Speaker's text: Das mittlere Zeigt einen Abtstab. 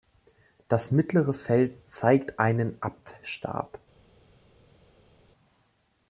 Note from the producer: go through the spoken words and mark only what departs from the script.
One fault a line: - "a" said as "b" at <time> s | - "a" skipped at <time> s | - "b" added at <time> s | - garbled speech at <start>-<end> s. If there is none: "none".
- "Feld" added at 1.4 s